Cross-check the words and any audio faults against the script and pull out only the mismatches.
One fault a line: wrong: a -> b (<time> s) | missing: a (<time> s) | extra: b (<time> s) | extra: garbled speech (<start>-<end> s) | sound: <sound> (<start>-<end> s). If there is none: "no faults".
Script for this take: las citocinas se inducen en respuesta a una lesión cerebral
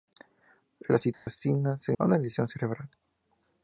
sound: dropout (1.1-1.3 s)
missing: inducen en respuesta (1.9 s)